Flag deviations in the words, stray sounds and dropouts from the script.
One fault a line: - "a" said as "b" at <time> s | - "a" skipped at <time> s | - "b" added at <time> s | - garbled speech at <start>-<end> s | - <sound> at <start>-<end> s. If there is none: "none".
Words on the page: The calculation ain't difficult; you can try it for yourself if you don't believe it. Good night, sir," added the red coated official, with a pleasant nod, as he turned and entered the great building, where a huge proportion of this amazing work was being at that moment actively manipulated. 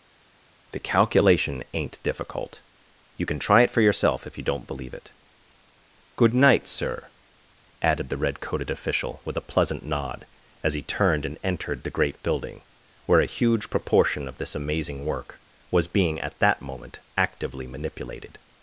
none